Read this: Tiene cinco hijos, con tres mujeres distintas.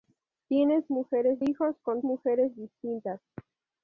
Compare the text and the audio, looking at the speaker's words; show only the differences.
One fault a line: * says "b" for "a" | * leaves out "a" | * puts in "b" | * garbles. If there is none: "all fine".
* says "mujeres" for "cinco"
* leaves out "tres"